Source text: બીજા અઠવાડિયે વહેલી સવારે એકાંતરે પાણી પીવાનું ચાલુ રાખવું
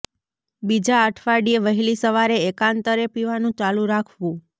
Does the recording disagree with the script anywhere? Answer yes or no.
yes